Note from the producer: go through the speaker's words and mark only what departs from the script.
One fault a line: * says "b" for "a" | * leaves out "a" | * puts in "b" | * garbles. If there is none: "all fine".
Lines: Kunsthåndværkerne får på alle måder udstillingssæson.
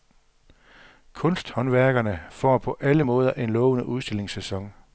* puts in "en lovende"